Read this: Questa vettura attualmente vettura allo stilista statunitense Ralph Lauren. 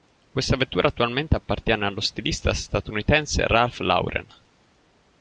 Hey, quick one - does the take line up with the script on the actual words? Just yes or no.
no